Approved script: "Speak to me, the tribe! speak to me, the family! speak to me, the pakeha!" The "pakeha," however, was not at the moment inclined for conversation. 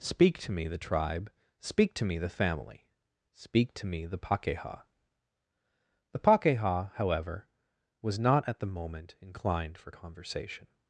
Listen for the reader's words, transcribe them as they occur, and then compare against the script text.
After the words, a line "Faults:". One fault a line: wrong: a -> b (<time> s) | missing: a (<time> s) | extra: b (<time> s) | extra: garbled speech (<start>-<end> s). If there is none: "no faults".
"Speak to me, the tribe! speak to me, the family! speak to me, the pakeha!" The "pakeha," however, was not at the moment inclined for conversation.
Faults:
no faults